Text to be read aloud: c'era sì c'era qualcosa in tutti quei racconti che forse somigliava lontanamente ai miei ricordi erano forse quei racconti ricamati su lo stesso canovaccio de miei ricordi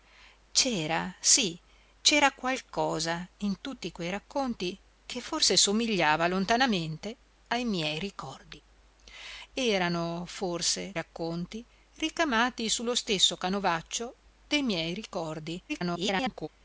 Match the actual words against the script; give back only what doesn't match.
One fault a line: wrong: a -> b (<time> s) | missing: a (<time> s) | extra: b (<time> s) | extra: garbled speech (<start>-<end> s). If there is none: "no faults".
missing: quei (10.9 s)
extra: garbled speech (15.7-16.5 s)